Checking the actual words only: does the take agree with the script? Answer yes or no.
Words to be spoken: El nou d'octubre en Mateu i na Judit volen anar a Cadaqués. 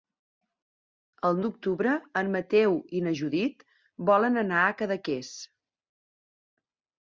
no